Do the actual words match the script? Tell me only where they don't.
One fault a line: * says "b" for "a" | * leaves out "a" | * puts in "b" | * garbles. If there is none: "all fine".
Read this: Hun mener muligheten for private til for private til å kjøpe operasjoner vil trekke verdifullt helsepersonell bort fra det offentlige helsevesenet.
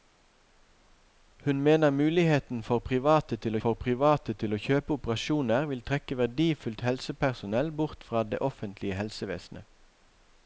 all fine